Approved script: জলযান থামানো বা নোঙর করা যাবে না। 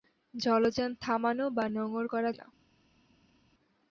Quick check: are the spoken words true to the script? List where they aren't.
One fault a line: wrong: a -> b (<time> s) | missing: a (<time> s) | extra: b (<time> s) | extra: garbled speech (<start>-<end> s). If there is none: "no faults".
missing: যাবে (2.3 s)